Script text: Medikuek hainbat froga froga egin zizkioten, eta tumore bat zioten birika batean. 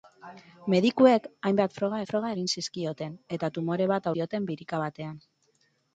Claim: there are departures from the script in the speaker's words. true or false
false